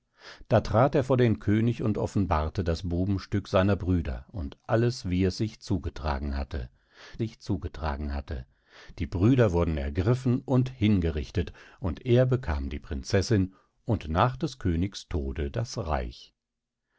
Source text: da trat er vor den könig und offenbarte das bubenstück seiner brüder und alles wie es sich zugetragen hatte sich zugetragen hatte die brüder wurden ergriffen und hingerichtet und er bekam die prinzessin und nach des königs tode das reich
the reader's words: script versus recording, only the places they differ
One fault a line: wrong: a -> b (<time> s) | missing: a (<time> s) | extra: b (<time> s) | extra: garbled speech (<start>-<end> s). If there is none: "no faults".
no faults